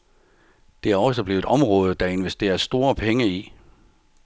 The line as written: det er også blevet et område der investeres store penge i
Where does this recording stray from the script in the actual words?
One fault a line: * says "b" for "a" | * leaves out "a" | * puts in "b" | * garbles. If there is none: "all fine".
* leaves out "et"